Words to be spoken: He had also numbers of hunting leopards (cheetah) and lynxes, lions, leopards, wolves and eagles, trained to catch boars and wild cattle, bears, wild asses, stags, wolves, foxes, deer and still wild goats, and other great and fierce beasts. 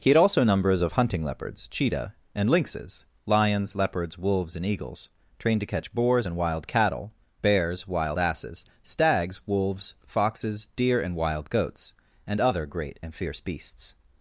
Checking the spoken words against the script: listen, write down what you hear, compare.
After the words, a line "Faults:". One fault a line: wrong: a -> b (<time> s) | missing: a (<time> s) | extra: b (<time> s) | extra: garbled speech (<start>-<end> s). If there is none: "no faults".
He had also numbers of hunting leopards (cheetah) and lynxes, lions, leopards, wolves and eagles, trained to catch boars and wild cattle, bears, wild asses, stags, wolves, foxes, deer and wild goats, and other great and fierce beasts.
Faults:
missing: still (11.1 s)